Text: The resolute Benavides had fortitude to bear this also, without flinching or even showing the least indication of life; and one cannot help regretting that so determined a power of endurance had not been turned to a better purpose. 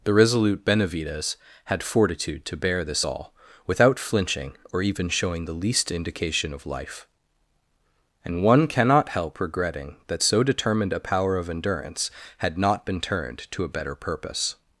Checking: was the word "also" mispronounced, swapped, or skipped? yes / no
yes